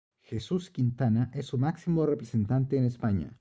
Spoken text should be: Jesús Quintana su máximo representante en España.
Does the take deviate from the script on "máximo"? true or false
false